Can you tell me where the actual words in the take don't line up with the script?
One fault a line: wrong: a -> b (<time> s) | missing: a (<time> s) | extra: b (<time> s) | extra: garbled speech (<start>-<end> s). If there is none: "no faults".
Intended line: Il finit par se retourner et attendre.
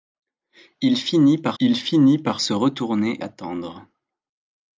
extra: il finit par (1.6 s)
missing: et (3.2 s)